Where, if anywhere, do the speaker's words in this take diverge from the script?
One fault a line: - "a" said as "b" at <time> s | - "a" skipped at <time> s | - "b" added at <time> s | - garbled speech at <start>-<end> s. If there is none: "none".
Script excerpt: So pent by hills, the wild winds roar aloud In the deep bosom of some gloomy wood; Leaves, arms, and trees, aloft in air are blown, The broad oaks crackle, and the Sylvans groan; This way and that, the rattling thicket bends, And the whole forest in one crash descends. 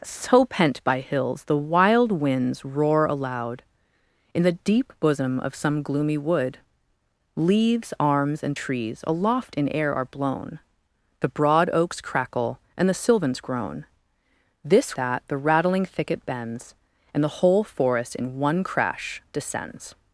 - "way and" skipped at 14.9 s